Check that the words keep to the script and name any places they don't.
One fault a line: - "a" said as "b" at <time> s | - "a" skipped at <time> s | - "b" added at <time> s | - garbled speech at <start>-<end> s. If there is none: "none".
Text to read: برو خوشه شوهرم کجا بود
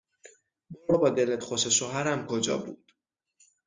- "بابا دلت" added at 0.9 s